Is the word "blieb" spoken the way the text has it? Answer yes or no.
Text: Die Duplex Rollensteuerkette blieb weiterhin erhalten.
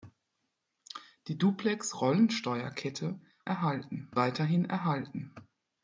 no